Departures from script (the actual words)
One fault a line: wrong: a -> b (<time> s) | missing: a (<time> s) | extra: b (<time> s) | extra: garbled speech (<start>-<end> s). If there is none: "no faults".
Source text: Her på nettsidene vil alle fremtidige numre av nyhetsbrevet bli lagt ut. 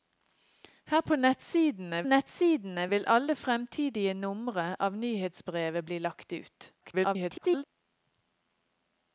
extra: nettsidene (2.0 s)
extra: garbled speech (6.8-7.6 s)